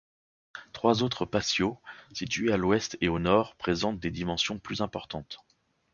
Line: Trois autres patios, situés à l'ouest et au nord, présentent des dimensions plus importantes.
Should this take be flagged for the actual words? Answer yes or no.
no